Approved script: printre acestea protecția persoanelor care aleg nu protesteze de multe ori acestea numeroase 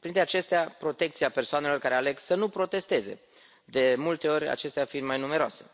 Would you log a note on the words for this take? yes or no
yes